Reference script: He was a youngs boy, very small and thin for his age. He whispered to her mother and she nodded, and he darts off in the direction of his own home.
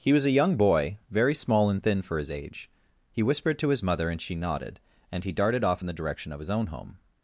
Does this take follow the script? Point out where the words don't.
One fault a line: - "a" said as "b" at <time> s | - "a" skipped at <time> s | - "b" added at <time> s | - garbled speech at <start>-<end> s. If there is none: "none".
- "youngs" said as "young" at 0.3 s
- "her" said as "his" at 3.7 s
- "darts" said as "darted" at 5.3 s